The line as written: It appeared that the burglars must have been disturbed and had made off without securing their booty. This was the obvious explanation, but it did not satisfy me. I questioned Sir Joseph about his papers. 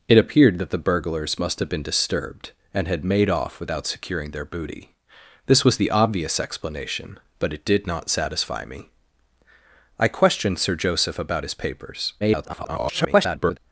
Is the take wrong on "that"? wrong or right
right